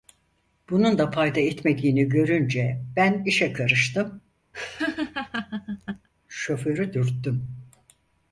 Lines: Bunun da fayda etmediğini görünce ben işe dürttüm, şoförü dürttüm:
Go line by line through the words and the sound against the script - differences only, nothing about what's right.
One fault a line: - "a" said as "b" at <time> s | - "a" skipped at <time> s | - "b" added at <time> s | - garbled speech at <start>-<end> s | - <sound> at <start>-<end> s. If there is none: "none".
- "dürttüm" said as "karıştım" at 3.5 s
- laugh at 4.5-6.1 s